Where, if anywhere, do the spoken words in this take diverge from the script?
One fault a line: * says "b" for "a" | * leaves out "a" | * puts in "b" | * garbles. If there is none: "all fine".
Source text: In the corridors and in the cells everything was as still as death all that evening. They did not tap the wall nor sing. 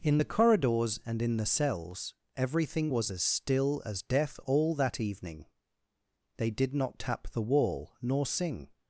all fine